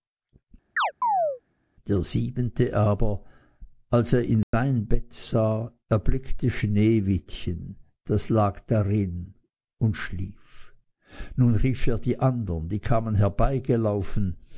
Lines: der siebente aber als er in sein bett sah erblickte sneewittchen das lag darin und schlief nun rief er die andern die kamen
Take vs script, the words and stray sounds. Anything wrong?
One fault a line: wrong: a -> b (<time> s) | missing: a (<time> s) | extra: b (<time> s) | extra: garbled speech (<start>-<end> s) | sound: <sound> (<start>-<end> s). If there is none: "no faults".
sound: chirp (0.8-1.4 s)
sound: dropout (4.4-4.5 s)